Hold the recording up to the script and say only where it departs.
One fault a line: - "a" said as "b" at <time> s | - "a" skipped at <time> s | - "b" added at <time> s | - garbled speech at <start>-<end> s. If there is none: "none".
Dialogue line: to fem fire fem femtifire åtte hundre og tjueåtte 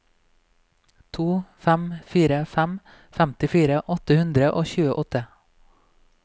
none